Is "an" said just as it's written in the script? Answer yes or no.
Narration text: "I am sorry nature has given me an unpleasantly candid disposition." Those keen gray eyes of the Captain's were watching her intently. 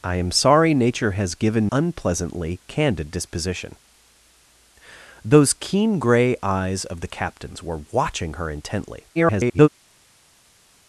no